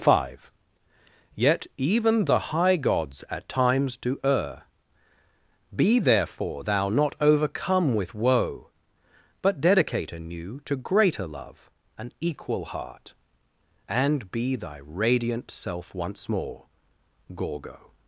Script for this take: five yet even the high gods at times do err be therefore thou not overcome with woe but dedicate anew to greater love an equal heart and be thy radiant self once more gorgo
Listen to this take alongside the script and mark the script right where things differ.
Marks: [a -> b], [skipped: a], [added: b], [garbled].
five yet even the high gods at times do err be therefore thou not overcome with woe but dedicate anew to greater love an equal heart and be thy radiant self once more gorgo